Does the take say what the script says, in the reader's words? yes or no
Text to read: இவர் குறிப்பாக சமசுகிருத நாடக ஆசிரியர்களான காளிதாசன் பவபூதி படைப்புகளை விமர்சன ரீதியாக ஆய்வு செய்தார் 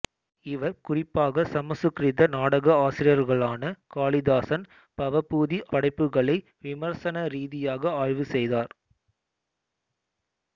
yes